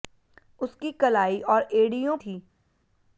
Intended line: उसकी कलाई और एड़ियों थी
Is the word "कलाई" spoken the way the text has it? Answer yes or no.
yes